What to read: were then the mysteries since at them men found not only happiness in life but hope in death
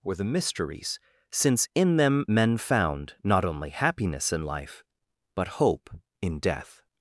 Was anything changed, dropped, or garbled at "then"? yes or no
yes